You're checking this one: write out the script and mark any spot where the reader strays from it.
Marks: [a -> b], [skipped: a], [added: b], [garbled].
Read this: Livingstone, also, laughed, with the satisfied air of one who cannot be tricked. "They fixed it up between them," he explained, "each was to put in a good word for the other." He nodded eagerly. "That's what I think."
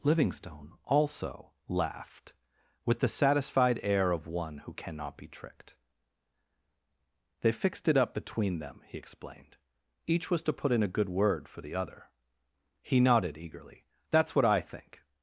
Livingstone, also, laughed, with the satisfied air of one who cannot be tricked. "They fixed it up between them," he explained, "each was to put in a good word for the other." He nodded eagerly. "That's what I think."